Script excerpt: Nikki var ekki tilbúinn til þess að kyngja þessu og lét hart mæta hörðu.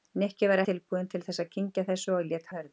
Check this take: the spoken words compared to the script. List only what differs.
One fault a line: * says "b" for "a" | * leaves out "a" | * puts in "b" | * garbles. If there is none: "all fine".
* leaves out "ekki"
* leaves out "hart mæta"